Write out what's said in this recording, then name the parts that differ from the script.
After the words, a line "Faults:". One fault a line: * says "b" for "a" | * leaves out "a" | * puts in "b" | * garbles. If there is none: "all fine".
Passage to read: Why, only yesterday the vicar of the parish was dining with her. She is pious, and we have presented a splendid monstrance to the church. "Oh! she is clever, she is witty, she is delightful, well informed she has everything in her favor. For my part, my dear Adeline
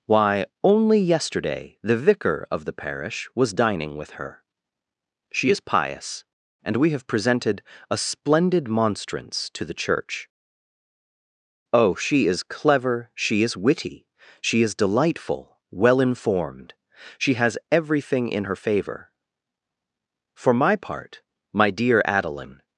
Why, only yesterday the vicar of the parish was dining with her. She is pious, and we have presented a splendid monstrance to the church. "Oh! she is clever, she is witty, she is delightful, well informed she has everything in her favor. For my part, my dear Adeline
Faults:
all fine